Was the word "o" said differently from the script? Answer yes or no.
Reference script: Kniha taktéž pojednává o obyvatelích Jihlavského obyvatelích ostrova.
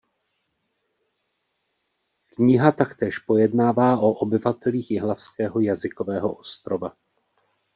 no